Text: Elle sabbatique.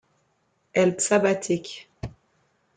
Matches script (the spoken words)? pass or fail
pass